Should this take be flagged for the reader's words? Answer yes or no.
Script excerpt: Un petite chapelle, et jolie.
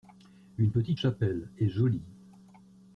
yes